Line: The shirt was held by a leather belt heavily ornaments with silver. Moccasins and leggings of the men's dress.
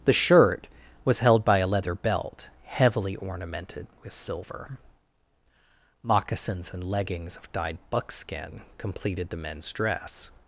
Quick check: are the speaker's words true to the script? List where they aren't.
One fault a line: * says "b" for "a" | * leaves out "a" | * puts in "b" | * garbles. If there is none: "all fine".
* says "ornamented" for "ornaments"
* puts in "dyed buckskin completed"